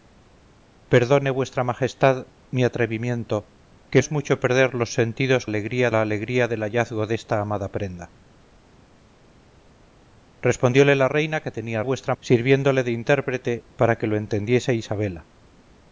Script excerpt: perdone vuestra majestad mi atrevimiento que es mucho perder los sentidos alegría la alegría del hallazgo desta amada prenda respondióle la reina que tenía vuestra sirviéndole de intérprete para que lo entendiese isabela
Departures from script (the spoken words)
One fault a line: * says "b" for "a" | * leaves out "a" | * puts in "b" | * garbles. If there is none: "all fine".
all fine